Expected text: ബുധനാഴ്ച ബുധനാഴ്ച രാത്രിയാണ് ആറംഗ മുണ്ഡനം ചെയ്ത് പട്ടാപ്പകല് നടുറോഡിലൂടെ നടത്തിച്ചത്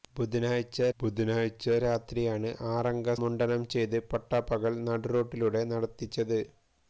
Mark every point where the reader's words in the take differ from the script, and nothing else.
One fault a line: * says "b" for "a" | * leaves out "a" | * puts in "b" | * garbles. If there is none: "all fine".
all fine